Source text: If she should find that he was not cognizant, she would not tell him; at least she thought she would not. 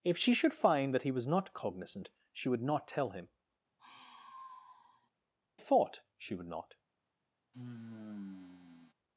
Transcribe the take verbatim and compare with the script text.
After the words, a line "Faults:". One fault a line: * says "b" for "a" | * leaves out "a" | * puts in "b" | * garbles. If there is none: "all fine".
If she should find that he was not cognizant, she would not tell him; thought she would not.
Faults:
* leaves out "at least she"